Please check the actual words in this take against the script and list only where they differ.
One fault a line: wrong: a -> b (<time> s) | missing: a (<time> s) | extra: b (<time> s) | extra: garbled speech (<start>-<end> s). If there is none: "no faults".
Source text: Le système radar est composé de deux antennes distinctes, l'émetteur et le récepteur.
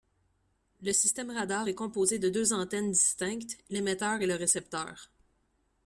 no faults